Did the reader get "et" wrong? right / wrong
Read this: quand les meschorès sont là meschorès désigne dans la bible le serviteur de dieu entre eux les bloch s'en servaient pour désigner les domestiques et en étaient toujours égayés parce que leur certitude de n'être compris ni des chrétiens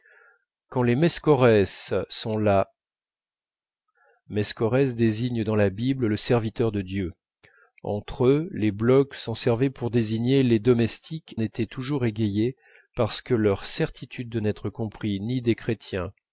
wrong